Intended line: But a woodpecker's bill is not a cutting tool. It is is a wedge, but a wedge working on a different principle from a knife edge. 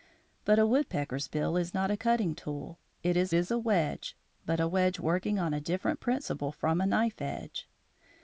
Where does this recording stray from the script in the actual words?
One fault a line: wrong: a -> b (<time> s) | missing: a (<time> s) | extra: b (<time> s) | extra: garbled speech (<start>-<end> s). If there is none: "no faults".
no faults